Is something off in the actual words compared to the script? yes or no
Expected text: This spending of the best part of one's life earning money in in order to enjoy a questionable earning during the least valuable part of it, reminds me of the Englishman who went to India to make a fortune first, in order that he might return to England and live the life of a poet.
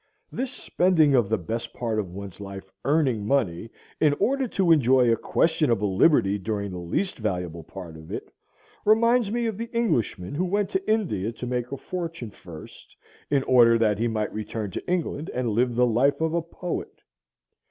yes